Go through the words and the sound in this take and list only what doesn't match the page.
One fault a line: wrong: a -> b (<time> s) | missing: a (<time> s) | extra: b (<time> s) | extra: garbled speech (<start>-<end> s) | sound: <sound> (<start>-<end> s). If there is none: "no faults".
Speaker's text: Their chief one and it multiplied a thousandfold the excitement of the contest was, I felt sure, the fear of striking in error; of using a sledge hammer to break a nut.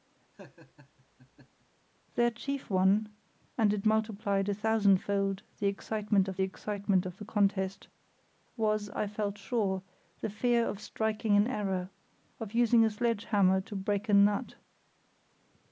sound: laugh (0.3-1.7 s)
extra: excitement of (6.4 s)